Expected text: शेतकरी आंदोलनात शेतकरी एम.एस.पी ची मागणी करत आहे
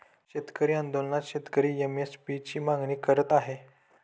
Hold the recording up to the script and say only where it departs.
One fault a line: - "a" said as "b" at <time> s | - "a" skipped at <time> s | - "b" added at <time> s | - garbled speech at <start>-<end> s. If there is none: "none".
none